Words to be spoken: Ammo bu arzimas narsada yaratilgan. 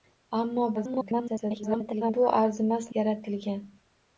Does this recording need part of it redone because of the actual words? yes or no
yes